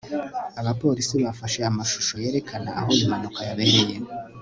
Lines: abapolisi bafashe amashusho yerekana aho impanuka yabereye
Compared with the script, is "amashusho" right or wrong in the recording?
right